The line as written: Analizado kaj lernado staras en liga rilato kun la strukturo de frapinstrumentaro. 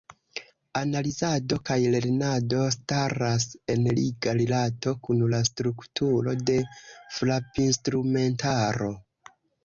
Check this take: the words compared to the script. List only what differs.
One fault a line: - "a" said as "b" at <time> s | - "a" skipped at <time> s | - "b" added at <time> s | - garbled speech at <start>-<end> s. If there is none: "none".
none